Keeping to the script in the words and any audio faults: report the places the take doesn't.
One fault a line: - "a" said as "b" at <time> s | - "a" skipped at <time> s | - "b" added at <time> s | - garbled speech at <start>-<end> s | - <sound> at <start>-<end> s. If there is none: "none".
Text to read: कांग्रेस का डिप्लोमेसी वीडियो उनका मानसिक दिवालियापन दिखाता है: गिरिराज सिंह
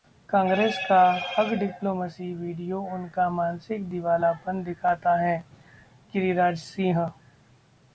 - "हग" added at 1.3 s